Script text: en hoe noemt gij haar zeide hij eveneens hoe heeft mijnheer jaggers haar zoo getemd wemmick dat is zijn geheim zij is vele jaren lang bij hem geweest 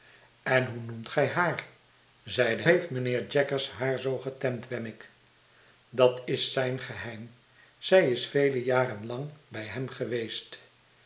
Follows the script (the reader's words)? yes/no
no